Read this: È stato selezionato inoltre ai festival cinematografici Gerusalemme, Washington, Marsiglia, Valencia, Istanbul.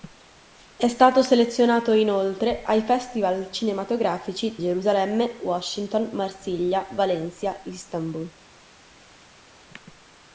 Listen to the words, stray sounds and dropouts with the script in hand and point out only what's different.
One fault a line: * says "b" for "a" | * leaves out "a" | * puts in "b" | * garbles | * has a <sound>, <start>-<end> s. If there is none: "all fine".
all fine